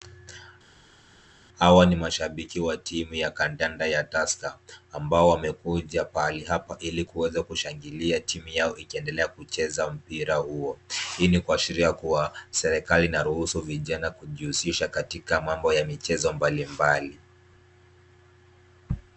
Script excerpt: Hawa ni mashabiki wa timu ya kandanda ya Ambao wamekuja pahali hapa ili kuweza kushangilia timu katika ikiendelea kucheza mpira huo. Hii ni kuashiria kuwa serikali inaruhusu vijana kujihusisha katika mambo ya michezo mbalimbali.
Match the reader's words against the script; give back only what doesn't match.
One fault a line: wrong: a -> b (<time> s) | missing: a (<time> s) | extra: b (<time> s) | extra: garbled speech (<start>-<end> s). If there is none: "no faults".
extra: Tusker (4.0 s)
wrong: katika -> yao (8.5 s)